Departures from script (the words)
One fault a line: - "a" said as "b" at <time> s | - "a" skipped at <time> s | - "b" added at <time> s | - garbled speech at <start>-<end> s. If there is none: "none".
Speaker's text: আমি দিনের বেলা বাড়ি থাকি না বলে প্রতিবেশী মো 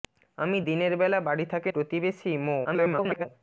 - "না বলে" skipped at 1.7 s
- garbled speech at 2.6-3.3 s